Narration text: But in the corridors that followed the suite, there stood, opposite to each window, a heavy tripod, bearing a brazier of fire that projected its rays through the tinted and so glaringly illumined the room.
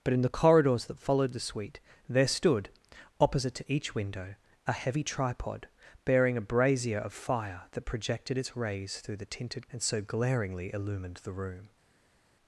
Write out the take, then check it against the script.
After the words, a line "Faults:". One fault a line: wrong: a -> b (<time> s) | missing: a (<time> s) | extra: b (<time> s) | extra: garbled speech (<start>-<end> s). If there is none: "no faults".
But in the corridors that followed the suite, there stood, opposite to each window, a heavy tripod, bearing a brazier of fire that projected its rays through the tinted and so glaringly illumined the room.
Faults:
no faults